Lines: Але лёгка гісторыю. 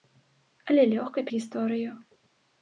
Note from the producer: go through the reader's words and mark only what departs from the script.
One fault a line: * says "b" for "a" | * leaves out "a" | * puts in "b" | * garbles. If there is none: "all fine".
all fine